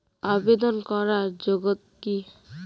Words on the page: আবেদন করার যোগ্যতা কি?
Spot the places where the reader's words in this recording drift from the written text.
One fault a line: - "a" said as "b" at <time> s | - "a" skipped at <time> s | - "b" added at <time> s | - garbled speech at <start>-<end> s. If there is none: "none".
- "যোগ্যতা" skipped at 1.2 s